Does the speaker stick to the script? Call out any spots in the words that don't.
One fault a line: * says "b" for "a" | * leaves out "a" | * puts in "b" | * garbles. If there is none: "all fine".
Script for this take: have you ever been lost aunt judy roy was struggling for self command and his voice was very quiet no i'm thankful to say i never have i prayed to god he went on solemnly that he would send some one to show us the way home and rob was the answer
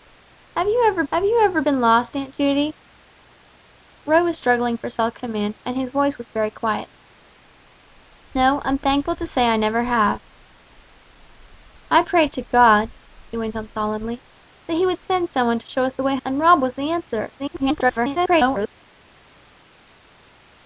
* puts in "have you ever"
* leaves out "home"
* garbles